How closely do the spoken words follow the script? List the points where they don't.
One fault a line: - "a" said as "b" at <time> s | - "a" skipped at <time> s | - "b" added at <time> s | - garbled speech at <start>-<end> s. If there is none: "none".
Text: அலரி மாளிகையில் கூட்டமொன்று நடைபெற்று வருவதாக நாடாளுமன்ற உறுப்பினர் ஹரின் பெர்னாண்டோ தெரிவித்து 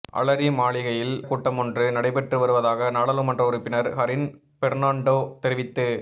none